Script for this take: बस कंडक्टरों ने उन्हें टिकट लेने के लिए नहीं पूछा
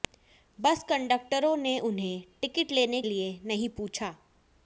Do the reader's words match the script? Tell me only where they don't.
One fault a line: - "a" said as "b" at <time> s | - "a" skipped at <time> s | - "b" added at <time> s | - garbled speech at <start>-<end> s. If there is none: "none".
- "के" skipped at 3.0 s